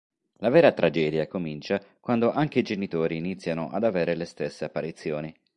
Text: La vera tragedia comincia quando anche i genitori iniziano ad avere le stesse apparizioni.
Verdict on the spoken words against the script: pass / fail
pass